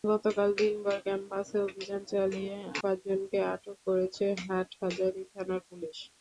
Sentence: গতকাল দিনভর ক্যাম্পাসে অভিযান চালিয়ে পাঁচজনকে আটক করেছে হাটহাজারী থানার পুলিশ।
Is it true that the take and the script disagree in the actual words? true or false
false